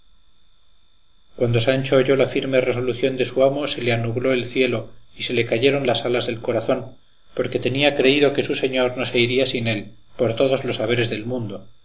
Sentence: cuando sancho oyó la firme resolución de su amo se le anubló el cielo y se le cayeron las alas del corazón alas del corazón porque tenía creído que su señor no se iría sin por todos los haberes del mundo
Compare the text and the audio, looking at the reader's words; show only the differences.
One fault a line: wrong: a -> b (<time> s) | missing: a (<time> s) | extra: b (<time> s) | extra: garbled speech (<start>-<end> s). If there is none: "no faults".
missing: alas del corazón (7.0 s)
extra: él (9.7 s)